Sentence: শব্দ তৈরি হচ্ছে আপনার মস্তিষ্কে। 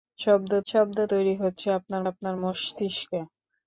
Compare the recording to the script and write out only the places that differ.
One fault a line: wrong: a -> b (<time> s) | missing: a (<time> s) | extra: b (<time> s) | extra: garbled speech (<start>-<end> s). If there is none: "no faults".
extra: শব্দ (0.7 s)
extra: আপনার (2.1 s)